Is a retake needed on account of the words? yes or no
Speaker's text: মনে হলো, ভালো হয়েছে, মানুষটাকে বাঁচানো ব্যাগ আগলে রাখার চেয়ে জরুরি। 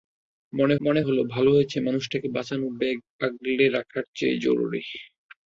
yes